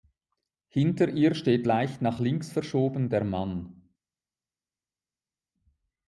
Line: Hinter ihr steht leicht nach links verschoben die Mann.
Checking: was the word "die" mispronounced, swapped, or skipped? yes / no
yes